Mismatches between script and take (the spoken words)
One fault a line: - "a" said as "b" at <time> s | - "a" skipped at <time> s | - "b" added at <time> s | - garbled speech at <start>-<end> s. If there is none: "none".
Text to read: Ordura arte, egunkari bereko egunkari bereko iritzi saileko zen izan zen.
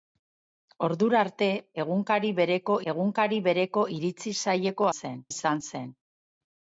none